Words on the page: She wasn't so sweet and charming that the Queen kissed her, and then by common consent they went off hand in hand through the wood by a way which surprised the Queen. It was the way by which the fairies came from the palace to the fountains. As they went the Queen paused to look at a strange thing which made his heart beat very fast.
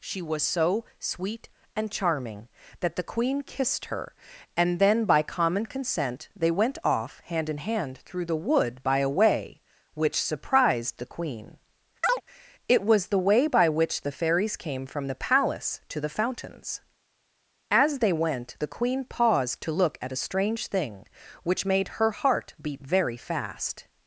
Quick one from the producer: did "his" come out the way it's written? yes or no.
no